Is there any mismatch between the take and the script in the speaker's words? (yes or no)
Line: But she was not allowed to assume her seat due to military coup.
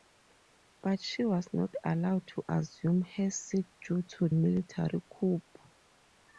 no